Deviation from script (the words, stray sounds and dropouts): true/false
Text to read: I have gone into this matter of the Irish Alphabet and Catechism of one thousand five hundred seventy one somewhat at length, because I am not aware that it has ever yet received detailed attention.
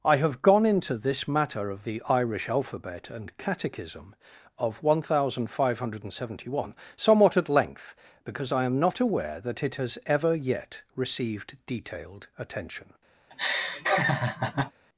true